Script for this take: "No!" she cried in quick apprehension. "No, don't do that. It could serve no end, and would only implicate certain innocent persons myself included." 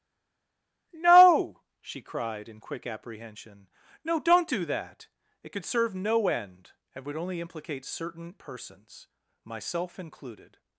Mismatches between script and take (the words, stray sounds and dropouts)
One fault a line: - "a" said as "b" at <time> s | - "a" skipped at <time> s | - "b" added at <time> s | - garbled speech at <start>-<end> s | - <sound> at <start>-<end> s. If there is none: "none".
- "innocent" skipped at 8.4 s